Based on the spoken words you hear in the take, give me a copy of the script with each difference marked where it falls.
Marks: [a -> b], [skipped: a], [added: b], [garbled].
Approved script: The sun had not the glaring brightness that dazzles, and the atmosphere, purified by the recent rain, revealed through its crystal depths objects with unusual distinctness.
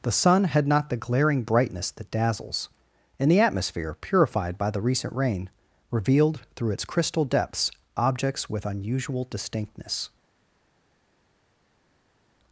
The sun had not the glaring brightness that dazzles, and the atmosphere, purified by the recent rain, revealed through its crystal depths objects with unusual distinctness.